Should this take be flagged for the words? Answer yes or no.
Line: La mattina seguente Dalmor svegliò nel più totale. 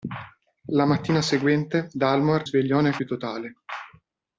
no